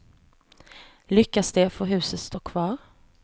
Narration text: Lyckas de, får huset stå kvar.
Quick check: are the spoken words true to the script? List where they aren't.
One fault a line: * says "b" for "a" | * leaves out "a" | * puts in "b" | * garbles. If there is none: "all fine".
all fine